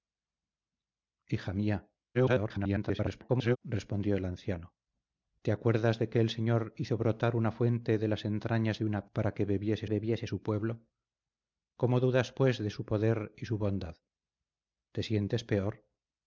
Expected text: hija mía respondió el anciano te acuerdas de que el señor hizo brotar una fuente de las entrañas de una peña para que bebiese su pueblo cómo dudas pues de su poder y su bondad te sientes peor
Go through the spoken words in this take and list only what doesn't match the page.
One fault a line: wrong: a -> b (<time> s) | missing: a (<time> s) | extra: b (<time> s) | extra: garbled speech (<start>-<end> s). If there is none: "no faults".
extra: garbled speech (2.1-3.6 s)
missing: peña (9.1 s)
extra: bebiese (9.9 s)